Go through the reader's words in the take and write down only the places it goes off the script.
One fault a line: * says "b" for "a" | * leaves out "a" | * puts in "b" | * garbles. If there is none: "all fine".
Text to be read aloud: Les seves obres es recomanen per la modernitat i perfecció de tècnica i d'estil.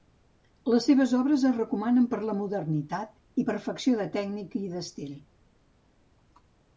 all fine